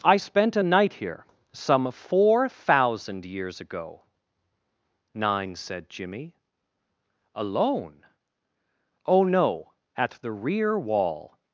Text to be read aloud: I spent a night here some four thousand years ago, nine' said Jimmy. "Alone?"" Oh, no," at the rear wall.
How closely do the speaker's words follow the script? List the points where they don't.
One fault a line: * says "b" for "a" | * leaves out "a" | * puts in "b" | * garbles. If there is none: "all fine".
all fine